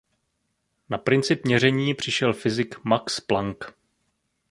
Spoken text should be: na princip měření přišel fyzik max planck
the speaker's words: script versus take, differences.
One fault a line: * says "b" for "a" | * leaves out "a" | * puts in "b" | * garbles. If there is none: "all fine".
all fine